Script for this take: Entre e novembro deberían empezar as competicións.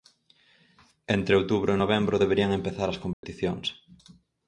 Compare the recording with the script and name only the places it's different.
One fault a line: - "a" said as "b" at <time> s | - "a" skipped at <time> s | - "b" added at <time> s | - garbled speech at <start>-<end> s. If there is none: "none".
- "outubro" added at 1.4 s